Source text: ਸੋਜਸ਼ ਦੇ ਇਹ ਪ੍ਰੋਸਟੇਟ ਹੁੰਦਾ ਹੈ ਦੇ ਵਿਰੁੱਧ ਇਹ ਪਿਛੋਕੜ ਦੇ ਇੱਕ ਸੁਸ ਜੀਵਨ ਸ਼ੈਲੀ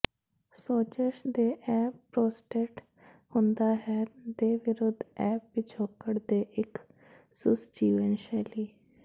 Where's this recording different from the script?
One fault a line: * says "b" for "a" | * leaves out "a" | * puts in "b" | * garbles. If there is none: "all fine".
all fine